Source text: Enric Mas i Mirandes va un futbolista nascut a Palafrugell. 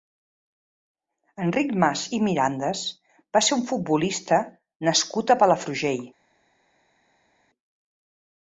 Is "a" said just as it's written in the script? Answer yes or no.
yes